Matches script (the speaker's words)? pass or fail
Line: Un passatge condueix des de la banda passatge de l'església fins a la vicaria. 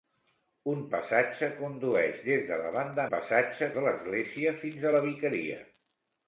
pass